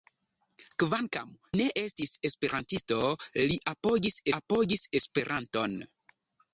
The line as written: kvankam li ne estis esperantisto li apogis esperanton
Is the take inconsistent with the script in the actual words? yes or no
yes